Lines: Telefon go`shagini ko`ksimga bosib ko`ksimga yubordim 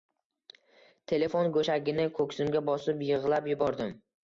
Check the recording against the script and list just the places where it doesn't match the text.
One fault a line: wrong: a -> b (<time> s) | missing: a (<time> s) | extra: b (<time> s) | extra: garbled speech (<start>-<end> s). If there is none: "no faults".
wrong: ko`ksimga -> yig`lab (3.1 s)